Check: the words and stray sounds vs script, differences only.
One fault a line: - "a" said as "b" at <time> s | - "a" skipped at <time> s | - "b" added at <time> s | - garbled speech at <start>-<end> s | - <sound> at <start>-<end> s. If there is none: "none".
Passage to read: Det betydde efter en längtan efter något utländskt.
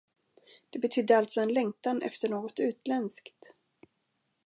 - "efter" said as "alltså" at 1.2 s